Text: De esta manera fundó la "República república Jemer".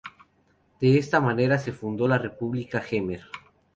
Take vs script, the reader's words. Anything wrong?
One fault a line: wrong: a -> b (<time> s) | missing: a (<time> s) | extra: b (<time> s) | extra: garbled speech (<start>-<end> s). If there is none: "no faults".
extra: se (1.6 s)
missing: república (2.8 s)